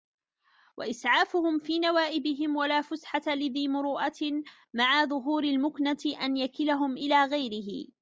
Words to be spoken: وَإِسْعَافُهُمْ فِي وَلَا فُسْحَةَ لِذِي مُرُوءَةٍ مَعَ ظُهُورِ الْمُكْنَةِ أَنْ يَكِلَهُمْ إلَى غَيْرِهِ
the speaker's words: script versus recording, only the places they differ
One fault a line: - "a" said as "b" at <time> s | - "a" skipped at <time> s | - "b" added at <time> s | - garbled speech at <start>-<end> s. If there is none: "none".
- "نَوَائِبِهِمْ" added at 1.8 s